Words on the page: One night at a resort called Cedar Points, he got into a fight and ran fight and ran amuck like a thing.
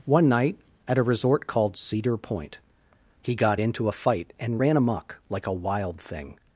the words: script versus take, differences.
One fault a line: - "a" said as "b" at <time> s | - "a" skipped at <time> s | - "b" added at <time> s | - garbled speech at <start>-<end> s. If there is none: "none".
- "Points" said as "Point" at 2.2 s
- "fight and ran" skipped at 4.8 s
- "wild" added at 5.5 s